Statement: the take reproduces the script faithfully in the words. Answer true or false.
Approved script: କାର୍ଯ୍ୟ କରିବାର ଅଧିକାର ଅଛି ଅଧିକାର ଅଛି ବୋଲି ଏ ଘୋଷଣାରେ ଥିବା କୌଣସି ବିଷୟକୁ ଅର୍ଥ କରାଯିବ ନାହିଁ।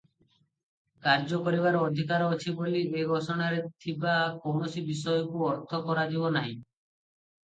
false